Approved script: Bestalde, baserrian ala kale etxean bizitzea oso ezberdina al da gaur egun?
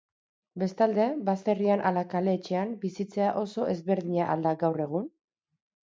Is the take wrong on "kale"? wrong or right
right